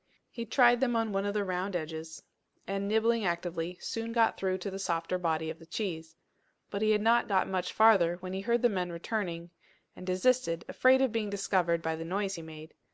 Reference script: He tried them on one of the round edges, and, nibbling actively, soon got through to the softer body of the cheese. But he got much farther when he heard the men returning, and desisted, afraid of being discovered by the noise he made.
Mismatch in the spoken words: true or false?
true